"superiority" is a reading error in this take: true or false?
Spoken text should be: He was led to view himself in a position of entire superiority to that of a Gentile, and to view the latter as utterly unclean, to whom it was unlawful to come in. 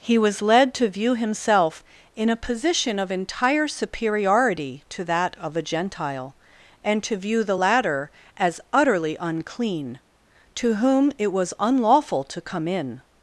false